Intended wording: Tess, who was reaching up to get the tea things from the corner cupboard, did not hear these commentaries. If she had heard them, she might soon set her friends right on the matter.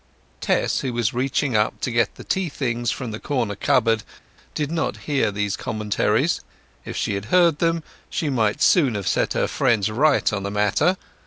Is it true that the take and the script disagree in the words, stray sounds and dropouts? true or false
true